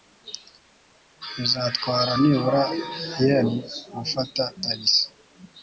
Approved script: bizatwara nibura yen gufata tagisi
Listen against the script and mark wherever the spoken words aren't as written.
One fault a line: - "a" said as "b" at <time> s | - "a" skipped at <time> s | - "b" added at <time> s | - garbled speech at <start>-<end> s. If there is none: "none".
none